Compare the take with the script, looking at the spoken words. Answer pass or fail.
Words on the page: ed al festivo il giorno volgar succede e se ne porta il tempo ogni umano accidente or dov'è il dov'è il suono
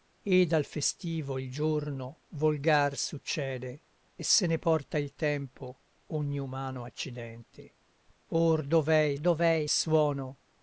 pass